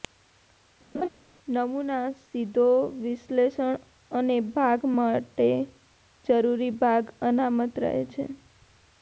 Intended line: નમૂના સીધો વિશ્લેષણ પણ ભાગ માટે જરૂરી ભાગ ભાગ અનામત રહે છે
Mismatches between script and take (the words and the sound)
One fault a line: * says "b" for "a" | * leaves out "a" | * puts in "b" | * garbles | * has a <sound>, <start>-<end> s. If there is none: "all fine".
* has a laugh, 0.9-1.1 s
* says "અને" for "પણ"
* leaves out "ભાગ"